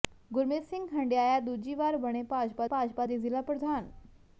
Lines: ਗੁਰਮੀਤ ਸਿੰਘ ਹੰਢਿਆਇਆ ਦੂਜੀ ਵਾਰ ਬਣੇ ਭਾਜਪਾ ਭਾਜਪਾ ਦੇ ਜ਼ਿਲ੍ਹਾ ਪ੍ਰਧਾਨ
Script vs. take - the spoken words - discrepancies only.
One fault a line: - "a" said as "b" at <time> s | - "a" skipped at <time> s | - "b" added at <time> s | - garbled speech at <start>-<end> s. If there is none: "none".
none